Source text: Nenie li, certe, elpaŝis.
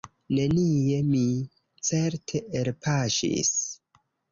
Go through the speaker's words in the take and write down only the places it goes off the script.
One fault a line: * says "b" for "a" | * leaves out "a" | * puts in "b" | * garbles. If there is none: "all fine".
* says "mi" for "li"